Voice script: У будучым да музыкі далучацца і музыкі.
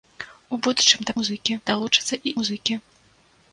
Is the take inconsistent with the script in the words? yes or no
no